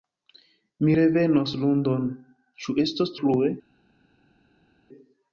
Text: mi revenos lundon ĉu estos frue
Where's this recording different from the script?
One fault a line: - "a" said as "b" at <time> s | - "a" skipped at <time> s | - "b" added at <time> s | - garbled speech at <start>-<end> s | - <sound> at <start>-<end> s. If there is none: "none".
none